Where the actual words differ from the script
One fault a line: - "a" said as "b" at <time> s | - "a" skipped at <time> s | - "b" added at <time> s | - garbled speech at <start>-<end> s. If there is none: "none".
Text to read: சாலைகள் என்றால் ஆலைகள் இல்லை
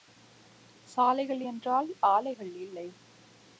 none